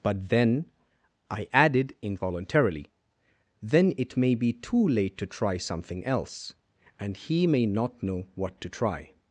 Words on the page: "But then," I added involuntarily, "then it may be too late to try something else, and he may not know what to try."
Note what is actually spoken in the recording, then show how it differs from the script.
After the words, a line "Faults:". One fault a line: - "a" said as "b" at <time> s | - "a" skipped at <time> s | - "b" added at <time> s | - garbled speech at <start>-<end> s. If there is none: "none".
"But then," I added involuntarily, "then it may be too late to try something else, and he may not know what to try."
Faults:
none